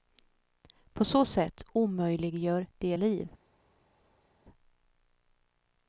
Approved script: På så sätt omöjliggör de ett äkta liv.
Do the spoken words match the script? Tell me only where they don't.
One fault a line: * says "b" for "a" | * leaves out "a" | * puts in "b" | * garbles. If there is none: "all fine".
* leaves out "ett äkta"